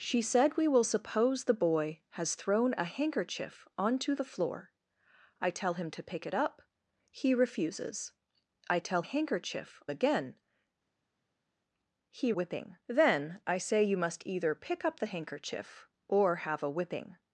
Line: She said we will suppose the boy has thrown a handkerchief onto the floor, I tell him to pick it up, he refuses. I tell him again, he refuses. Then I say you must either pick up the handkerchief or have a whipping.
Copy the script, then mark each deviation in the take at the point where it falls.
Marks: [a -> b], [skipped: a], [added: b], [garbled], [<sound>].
She said we will suppose the boy has thrown a handkerchief onto the floor, I tell him to pick it up, he refuses. I tell [him -> handkerchief] again, he [refuses. -> whipping] Then I say you must either pick up the handkerchief or have a whipping.